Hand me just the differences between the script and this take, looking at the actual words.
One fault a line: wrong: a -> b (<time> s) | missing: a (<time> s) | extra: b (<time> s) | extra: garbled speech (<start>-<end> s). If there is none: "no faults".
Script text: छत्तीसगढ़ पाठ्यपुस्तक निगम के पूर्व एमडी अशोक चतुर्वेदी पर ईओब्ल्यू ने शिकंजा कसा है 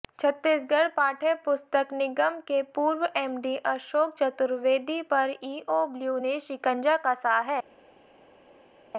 no faults